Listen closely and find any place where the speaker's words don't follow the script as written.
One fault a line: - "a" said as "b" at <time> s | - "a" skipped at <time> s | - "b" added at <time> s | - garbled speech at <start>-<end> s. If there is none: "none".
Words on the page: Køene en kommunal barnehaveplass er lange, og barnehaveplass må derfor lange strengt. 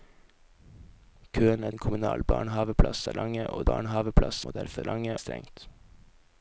none